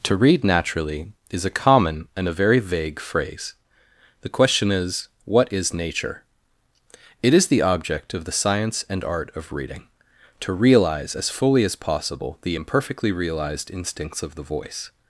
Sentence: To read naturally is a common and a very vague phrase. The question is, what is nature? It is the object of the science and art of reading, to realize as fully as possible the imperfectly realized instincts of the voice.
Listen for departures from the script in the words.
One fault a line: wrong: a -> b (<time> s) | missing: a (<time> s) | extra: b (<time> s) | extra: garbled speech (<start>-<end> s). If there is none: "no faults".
no faults